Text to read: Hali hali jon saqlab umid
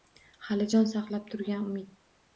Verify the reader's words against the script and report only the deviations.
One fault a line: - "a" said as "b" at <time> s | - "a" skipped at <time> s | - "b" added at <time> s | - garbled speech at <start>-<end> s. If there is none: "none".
- "hali" skipped at 0.7 s
- "turgan" added at 1.4 s